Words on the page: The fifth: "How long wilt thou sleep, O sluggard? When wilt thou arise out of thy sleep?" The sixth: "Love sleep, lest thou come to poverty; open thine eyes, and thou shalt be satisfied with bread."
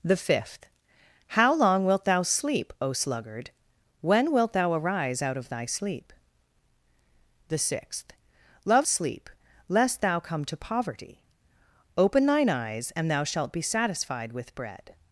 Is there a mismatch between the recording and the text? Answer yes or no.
no